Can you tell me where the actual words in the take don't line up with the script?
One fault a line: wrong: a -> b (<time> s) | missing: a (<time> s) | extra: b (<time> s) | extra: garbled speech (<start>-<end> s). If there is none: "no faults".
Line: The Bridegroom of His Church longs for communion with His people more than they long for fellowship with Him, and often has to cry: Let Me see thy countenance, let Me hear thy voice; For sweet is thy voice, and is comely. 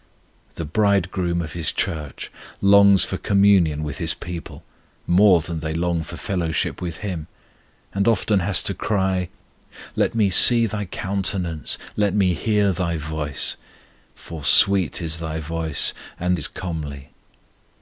no faults